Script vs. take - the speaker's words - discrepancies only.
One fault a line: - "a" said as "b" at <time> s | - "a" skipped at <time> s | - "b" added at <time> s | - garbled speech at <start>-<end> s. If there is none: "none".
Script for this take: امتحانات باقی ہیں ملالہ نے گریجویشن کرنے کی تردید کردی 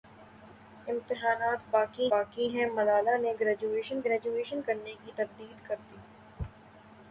- "باقی" added at 2.1 s
- "گریجویشن" added at 4.0 s